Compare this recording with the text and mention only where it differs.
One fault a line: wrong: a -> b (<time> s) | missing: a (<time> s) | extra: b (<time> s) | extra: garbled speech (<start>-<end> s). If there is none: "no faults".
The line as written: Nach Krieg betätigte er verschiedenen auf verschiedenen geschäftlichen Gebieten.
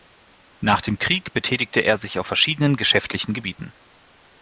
extra: dem (0.8 s)
wrong: verschiedenen -> sich (2.0 s)